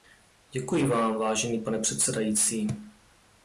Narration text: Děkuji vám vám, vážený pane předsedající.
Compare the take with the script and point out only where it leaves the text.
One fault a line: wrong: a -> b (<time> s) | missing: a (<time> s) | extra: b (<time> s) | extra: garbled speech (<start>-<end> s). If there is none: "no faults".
missing: vám (1.1 s)